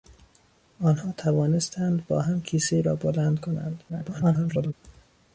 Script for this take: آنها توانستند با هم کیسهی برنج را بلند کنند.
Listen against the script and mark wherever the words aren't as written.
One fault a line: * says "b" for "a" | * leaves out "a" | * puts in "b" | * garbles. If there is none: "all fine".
* leaves out "برنج"
* garbles